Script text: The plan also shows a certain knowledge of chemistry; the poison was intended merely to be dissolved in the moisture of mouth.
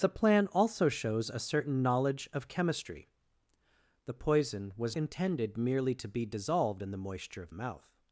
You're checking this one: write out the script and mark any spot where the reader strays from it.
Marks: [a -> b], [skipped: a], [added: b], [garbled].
The plan also shows a certain knowledge of chemistry; the poison was intended merely to be dissolved in the moisture of mouth.